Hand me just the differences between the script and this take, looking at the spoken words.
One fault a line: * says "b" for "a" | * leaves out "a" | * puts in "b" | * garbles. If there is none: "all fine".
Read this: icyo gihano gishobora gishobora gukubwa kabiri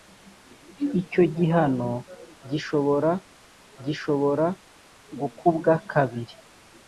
all fine